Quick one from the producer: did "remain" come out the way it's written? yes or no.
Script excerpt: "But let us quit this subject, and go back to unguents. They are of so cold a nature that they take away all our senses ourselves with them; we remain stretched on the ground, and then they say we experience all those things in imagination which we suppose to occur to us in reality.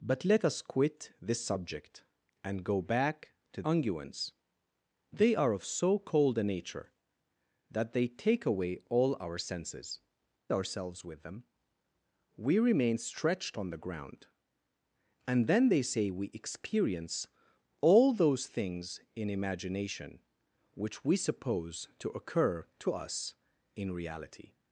yes